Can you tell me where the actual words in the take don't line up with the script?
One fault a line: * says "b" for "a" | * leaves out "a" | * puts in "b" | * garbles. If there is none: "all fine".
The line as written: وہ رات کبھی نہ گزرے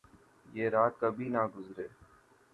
* says "یہ" for "وہ"